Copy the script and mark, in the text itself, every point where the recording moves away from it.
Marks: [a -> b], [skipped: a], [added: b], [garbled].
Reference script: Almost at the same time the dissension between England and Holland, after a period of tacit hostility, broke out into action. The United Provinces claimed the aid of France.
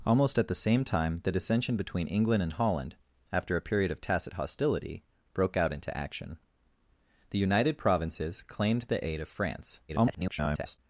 Almost at the same time the dissension between England and Holland, after a period of tacit hostility, broke out into action. The United Provinces claimed the aid of France. [garbled]